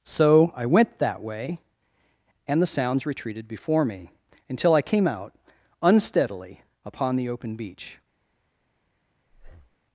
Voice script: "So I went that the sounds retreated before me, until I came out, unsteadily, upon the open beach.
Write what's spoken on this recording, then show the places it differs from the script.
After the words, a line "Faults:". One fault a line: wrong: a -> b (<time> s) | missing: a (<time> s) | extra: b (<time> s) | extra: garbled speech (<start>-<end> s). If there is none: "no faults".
"So I went that way; and the sounds retreated before me, until I came out, unsteadily, upon the open beach.
Faults:
extra: way and (1.2 s)